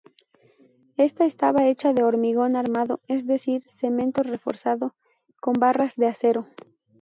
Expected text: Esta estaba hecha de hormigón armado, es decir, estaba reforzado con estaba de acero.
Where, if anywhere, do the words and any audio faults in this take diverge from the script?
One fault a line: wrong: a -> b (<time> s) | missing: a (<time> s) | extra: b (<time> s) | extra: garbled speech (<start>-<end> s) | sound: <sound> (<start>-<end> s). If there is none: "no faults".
wrong: estaba -> cemento (3.7 s)
wrong: estaba -> barras (5.5 s)